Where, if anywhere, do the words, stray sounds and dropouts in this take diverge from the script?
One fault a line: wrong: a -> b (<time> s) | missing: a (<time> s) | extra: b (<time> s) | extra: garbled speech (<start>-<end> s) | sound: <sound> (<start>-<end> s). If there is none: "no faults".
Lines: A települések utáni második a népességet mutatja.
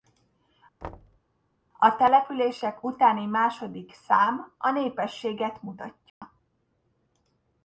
sound: thud (0.8-1.2 s)
extra: szám (3.9 s)
sound: dropout (6.1-6.2 s)